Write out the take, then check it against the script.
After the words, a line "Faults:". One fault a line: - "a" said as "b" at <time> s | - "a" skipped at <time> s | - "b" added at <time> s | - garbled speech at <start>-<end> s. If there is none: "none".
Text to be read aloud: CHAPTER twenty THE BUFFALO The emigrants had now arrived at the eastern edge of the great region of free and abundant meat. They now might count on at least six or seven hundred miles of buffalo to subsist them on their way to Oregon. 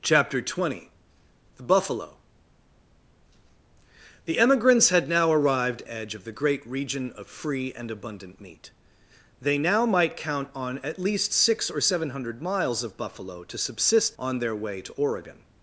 CHAPTER twenty THE BUFFALO The emigrants had now arrived edge of the great region of free and abundant meat. They now might count on at least six or seven hundred miles of buffalo to subsist on their way to Oregon.
Faults:
- "at the eastern" skipped at 5.8 s
- "them" skipped at 14.2 s